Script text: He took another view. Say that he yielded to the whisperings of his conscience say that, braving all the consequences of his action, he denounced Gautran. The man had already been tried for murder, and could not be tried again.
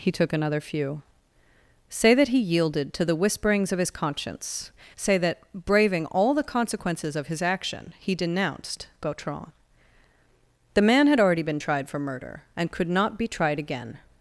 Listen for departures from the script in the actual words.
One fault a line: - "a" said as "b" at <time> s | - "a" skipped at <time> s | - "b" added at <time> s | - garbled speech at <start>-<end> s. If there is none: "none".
- "view" said as "few" at 0.6 s